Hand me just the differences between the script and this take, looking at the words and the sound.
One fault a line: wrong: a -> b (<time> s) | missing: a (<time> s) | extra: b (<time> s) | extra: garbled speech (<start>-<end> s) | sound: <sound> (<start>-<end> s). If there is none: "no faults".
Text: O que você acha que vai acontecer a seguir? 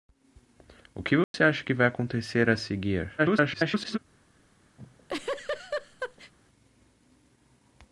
sound: dropout (1.2-1.3 s)
extra: garbled speech (3.2-4.0 s)
sound: laugh (4.8-6.3 s)